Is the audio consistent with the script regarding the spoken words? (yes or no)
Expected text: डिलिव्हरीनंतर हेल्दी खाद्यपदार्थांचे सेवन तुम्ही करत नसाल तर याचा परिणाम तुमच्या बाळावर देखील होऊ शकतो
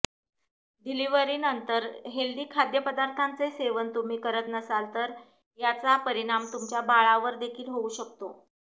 yes